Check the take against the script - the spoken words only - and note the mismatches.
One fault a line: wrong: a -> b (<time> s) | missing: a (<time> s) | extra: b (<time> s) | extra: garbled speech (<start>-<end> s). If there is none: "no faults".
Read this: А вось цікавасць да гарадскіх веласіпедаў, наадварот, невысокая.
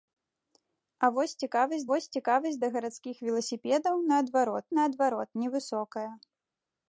extra: вось цікавасць (1.9 s)
extra: наадварот (4.8 s)